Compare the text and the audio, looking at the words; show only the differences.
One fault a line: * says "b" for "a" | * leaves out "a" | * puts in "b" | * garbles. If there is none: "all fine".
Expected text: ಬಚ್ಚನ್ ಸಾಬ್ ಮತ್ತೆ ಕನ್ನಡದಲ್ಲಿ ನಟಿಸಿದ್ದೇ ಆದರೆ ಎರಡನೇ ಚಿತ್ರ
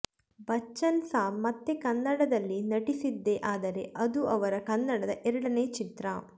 * puts in "ಅದು ಅವರ ಕನ್ನಡದ"